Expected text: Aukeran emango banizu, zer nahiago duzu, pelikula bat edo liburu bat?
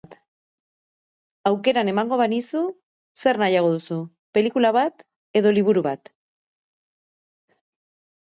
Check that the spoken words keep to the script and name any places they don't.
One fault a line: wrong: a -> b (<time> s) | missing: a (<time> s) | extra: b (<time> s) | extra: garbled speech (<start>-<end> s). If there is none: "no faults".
no faults